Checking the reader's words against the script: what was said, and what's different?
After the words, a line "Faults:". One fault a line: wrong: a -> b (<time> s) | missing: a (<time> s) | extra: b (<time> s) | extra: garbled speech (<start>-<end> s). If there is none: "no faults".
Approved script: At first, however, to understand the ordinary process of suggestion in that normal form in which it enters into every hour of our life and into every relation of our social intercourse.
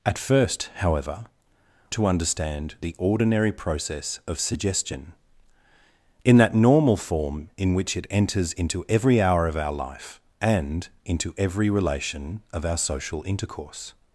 At first, however, to understand the ordinary process of suggestion in that normal form in which it enters into every hour of our life and into every relation of our social intercourse.
Faults:
no faults